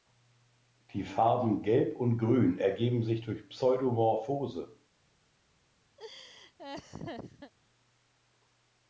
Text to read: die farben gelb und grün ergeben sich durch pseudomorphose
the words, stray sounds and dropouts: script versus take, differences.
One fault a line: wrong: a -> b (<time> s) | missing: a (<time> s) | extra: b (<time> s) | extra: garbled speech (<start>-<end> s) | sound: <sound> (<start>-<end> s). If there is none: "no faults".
sound: laugh (6.0-7.5 s)